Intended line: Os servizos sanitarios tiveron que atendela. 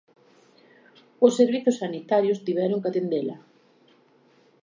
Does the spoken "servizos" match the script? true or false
true